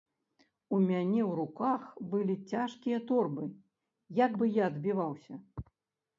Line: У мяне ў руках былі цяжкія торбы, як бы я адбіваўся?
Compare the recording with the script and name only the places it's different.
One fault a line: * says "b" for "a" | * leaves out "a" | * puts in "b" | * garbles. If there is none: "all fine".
all fine